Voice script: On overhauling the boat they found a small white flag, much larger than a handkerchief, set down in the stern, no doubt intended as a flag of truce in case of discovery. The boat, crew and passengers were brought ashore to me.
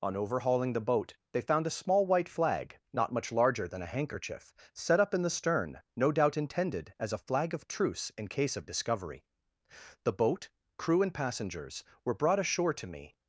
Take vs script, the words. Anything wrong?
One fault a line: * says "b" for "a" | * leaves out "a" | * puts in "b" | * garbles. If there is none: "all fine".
* puts in "not"
* says "up" for "down"